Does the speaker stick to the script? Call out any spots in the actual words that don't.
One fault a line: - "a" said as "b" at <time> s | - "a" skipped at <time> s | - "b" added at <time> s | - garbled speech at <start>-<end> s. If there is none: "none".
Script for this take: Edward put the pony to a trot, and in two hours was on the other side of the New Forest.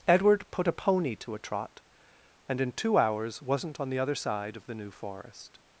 - "the" said as "a" at 0.7 s
- "was" said as "wasn't" at 3.4 s